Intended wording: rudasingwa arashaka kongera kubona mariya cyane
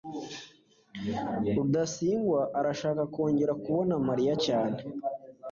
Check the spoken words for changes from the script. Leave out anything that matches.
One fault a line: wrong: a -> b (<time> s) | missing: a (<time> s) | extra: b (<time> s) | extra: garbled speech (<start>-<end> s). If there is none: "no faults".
no faults